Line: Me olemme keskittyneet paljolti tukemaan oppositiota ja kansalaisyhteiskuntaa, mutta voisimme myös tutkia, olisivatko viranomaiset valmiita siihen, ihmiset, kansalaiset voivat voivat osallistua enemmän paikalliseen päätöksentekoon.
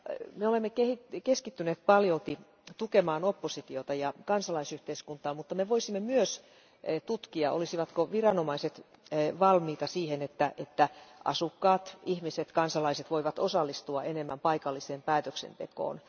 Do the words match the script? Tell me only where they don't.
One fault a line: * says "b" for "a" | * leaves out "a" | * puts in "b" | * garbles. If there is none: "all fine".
* puts in "me"
* puts in "että asukkaat"
* leaves out "voivat"